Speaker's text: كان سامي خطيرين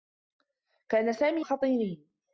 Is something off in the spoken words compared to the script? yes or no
no